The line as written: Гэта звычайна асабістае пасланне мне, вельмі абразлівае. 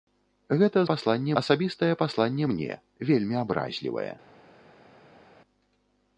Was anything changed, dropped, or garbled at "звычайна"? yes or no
yes